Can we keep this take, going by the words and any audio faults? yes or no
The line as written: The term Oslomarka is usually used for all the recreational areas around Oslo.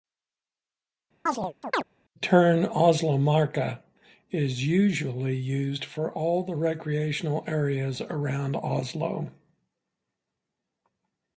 no